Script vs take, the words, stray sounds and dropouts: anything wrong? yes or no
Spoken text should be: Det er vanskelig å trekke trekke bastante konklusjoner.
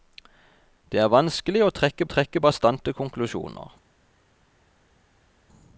no